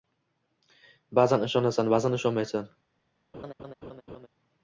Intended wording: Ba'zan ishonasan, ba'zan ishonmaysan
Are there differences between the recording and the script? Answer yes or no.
no